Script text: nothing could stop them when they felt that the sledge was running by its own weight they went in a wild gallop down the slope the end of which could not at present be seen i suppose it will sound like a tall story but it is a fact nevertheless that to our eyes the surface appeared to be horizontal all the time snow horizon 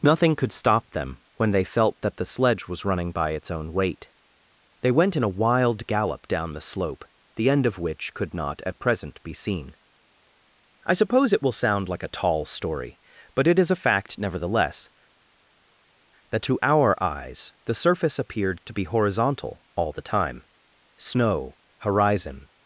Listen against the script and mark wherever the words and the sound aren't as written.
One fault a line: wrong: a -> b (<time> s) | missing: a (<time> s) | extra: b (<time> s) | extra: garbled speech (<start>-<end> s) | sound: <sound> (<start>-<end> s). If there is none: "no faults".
no faults